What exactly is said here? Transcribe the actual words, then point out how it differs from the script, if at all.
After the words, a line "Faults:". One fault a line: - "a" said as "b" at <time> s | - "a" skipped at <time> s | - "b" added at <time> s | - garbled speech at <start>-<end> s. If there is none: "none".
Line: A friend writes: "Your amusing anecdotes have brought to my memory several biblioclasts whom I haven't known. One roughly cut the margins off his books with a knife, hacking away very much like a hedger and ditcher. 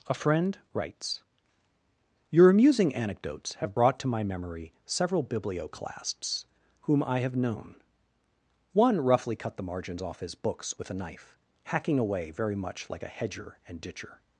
A friend writes: "Your amusing anecdotes have brought to my memory several biblioclasts whom I have known. One roughly cut the margins off his books with a knife, hacking away very much like a hedger and ditcher.
Faults:
- "haven't" said as "have" at 7.2 s